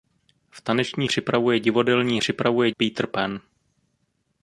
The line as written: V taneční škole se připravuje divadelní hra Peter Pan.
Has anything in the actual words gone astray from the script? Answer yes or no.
yes